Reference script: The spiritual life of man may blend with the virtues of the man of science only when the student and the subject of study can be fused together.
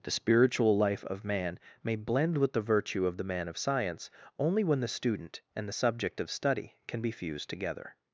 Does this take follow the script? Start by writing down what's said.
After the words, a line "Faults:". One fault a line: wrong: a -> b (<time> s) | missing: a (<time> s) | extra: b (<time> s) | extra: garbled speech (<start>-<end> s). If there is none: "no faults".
The spiritual life of man may blend with the virtue of the man of science only when the student and the subject of study can be fused together.
Faults:
wrong: virtues -> virtue (2.6 s)